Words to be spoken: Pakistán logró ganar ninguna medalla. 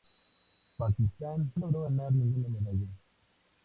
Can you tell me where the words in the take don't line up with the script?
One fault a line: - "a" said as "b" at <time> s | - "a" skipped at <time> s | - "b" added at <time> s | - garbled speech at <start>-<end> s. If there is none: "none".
none